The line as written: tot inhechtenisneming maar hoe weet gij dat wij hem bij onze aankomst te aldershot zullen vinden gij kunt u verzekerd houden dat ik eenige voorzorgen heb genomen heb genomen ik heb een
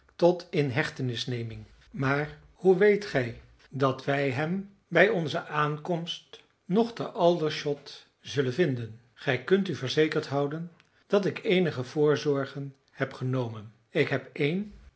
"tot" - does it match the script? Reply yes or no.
yes